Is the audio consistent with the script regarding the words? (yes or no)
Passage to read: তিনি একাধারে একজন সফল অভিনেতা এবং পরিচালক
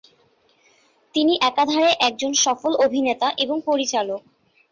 yes